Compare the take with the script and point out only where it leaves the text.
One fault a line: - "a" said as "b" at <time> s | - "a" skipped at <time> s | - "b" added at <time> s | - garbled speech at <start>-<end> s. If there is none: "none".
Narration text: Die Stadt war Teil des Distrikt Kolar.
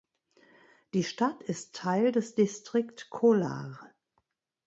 - "war" said as "ist" at 1.4 s